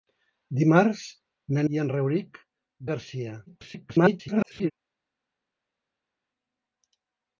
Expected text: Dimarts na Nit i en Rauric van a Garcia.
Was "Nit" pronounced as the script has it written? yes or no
no